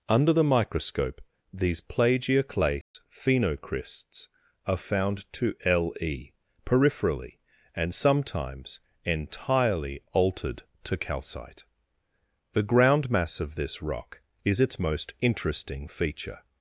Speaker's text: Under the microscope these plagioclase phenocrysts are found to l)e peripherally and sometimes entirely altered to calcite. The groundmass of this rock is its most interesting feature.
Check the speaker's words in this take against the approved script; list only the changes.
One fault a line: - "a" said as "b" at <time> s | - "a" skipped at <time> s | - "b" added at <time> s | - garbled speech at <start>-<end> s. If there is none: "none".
none